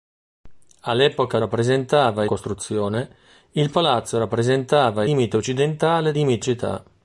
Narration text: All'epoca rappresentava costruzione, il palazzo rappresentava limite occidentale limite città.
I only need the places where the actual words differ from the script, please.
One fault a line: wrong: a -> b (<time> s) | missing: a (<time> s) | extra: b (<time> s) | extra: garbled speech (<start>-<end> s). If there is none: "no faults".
no faults